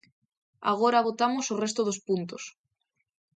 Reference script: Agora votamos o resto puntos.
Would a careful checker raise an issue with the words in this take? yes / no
yes